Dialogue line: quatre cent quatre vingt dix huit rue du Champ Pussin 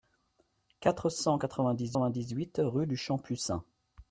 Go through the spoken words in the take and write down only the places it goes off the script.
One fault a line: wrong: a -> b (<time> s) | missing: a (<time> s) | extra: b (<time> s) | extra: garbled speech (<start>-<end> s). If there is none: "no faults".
extra: vingt dix (2.0 s)